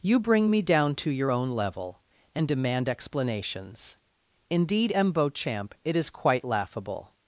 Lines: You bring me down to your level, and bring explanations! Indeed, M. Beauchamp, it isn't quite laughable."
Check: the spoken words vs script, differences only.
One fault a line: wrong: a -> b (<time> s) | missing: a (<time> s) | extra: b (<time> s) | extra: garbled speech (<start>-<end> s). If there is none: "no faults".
extra: own (1.3 s)
wrong: bring -> demand (2.5 s)
wrong: isn't -> is (6.0 s)